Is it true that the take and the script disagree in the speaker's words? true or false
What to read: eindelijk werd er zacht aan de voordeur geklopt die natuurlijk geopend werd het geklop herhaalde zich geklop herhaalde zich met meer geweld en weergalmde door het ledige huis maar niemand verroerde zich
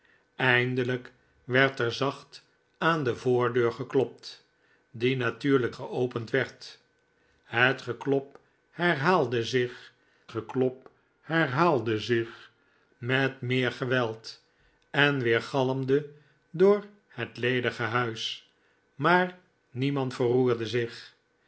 false